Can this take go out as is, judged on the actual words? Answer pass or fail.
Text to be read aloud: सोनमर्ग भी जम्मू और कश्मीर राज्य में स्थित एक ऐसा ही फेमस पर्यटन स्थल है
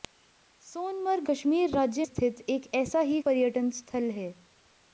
fail